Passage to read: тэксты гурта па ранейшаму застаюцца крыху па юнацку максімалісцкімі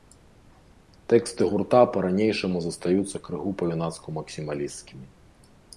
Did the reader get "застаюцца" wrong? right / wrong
right